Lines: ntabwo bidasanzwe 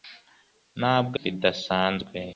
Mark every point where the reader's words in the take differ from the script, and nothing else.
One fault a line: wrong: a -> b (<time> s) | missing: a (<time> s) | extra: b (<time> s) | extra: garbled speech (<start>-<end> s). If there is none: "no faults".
no faults